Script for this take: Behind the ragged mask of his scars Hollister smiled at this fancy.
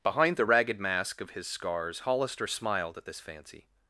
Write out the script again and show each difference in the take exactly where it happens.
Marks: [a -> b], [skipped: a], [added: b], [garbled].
Behind the ragged mask of his scars Hollister smiled at this fancy.